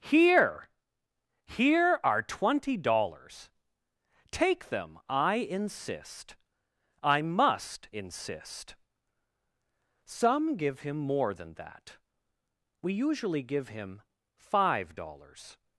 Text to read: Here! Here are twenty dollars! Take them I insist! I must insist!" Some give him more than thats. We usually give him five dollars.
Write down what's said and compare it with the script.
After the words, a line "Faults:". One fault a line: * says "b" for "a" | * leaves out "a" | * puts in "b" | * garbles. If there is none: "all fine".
Here! Here are twenty dollars! Take them I insist! I must insist!" Some give him more than that. We usually give him five dollars.
Faults:
* says "that" for "thats"